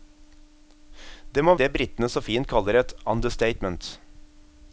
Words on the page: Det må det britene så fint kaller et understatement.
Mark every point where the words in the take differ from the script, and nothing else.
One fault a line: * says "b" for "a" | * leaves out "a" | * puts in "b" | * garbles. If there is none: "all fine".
all fine